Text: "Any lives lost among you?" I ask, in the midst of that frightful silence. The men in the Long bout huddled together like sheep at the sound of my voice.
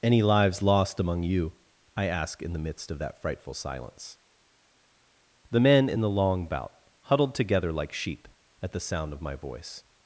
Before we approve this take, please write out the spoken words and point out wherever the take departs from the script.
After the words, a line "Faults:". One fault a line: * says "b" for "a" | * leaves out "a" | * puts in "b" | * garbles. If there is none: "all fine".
"Any lives lost among you?" I ask, in the midst of that frightful silence. The men in the Long bout huddled together like sheep at the sound of my voice.
Faults:
all fine